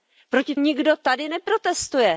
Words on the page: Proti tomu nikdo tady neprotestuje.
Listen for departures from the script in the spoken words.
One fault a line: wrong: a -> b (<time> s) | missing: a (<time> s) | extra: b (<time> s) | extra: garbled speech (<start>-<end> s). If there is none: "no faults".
missing: tomu (0.6 s)